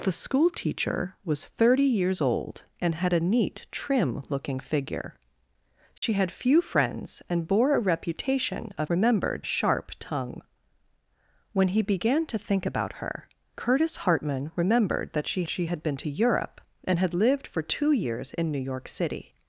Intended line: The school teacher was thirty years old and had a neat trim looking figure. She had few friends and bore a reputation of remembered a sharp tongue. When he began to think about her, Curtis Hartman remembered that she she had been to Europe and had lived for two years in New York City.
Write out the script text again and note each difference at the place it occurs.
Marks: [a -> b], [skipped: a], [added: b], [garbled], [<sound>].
The school teacher was thirty years old and had a neat trim looking figure. She [dropout] had few friends and bore a reputation of remembered a sharp tongue. When he began to think about her, Curtis Hartman remembered that she she had been to Europe and had lived for two years in New York City.